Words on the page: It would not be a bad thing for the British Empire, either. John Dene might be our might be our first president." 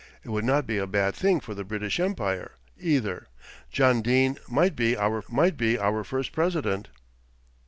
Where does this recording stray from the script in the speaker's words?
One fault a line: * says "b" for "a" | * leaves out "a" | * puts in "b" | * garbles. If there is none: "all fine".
all fine